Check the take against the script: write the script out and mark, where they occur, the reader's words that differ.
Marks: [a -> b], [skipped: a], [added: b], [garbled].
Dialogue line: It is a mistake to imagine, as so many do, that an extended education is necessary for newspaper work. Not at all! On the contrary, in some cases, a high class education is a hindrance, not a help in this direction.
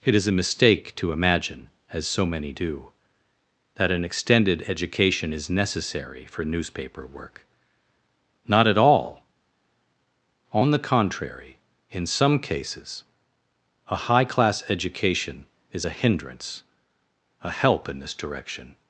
It is a mistake to imagine, as so many do, that an extended education is necessary for newspaper work. Not at all! On the contrary, in some cases, a high class education is a hindrance, [skipped: not] a help in this direction.